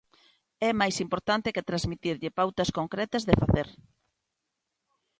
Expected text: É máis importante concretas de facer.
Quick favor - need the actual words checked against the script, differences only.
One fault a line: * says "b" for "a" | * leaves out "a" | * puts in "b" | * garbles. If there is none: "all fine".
* puts in "que transmitirlle pautas"